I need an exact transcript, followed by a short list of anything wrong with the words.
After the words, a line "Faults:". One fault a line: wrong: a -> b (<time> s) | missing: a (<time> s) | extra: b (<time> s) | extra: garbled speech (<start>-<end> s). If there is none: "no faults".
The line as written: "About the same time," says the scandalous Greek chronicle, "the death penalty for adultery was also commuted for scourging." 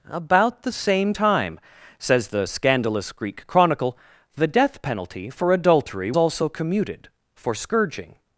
"About the same time," says the scandalous Greek chronicle, "the death penalty for adultery also commuted for scourging."
Faults:
missing: was (6.1 s)